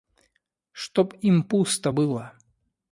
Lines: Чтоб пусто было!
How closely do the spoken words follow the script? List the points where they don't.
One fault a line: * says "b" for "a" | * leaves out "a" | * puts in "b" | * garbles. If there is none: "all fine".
* puts in "им"